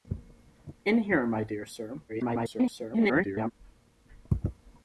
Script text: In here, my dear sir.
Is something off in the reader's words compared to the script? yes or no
yes